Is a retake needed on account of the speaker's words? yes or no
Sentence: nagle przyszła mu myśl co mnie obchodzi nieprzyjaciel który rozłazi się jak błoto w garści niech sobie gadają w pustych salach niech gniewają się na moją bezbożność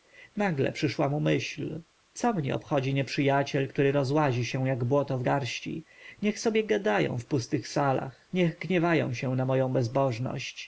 no